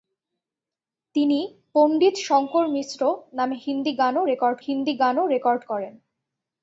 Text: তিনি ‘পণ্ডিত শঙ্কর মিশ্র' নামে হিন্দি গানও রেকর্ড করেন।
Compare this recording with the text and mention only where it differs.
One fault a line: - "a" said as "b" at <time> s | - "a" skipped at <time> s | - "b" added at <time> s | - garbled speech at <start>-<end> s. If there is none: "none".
- "হিন্দি গানও রেকর্ড" added at 4.7 s